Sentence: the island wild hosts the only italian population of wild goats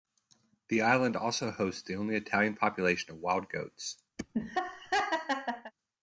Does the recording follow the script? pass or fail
fail